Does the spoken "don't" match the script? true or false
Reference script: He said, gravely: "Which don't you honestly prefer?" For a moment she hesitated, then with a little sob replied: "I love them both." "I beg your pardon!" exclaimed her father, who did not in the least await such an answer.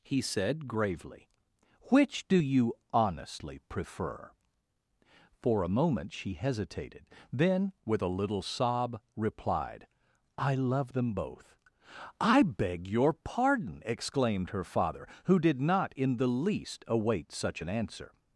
false